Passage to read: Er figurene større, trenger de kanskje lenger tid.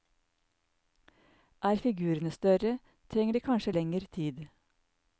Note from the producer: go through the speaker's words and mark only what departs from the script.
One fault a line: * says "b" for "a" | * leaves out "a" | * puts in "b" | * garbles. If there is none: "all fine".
all fine